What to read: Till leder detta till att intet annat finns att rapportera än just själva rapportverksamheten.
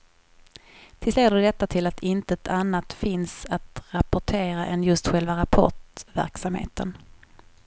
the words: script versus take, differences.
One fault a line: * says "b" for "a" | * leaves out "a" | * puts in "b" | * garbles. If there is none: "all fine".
all fine